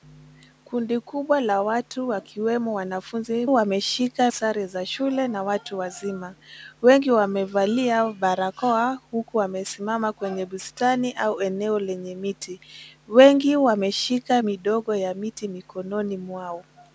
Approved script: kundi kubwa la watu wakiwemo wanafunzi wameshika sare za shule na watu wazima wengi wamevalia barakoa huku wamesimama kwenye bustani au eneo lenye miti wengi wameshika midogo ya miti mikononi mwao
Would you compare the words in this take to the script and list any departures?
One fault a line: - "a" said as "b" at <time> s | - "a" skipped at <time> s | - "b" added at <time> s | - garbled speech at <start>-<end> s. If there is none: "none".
none